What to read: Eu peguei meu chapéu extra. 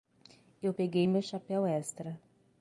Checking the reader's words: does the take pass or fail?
pass